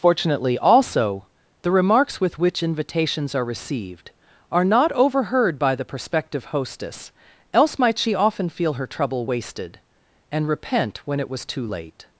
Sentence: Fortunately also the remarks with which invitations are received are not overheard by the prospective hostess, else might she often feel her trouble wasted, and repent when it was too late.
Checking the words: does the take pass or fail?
pass